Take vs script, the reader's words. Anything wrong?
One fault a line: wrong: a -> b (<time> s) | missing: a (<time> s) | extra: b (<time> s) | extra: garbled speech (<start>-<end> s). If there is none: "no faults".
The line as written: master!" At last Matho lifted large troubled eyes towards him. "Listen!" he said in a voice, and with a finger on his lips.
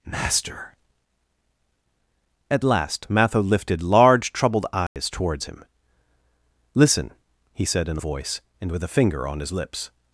no faults